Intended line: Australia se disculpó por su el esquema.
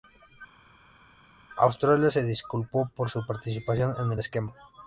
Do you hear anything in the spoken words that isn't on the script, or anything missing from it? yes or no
yes